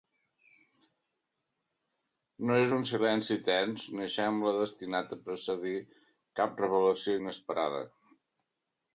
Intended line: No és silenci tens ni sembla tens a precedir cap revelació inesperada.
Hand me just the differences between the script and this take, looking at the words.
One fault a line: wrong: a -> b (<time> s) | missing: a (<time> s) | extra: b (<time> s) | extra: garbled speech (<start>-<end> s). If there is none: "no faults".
extra: un (2.8 s)
wrong: tens -> destinat (4.6 s)